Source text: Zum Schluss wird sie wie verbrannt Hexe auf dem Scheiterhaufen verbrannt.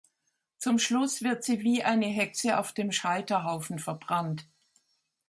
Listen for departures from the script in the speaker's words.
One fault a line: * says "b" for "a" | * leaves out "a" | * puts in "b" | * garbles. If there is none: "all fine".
* says "eine" for "verbrannt"